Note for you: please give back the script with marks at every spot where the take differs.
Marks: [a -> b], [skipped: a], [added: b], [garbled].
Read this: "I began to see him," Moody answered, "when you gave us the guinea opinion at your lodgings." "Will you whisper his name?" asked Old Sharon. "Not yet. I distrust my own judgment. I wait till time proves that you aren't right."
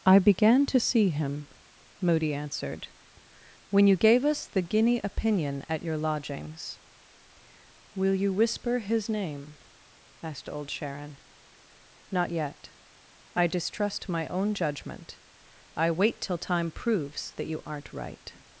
"I began to see him," Moody answered, "when you gave us the guinea opinion at your lodgings." "Will you whisper his name?" asked Old Sharon. "Not yet. I distrust my own judgment. I wait till time proves that you aren't right."